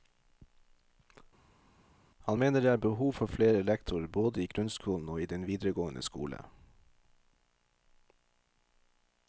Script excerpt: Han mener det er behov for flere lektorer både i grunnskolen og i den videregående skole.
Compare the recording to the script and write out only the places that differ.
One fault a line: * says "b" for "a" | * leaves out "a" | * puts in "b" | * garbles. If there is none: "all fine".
all fine